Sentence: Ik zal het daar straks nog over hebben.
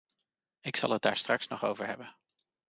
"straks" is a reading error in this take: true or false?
false